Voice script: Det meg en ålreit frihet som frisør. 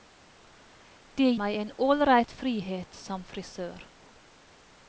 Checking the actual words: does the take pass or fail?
pass